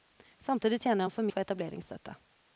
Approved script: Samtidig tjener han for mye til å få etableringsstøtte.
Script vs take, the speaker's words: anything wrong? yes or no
yes